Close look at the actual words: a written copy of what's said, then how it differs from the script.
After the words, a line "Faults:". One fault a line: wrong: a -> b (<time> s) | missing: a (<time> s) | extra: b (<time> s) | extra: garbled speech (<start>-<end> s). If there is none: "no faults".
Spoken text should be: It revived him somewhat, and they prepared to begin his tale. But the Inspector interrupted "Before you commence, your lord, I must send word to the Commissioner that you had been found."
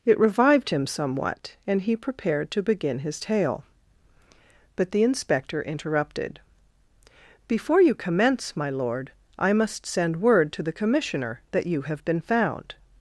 It revived him somewhat, and he prepared to begin his tale. But the Inspector interrupted "Before you commence, my lord, I must send word to the Commissioner that you have been found."
Faults:
wrong: they -> he (1.8 s)
wrong: your -> my (8.6 s)
wrong: had -> have (11.9 s)